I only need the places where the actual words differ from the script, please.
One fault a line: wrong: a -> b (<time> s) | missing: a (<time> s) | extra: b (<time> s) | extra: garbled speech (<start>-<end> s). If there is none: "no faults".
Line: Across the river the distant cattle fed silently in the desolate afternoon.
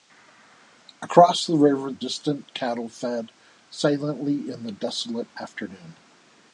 missing: the (1.9 s)